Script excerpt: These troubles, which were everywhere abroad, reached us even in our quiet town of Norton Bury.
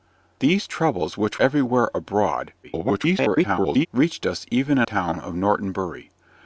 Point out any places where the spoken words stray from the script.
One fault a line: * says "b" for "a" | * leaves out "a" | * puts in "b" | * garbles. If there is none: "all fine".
* leaves out "were"
* garbles
* leaves out "our quiet"